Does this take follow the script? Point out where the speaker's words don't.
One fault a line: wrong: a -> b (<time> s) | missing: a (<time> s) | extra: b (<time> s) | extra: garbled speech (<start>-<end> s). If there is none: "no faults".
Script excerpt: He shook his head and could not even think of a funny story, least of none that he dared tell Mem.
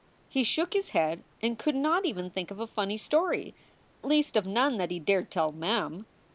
no faults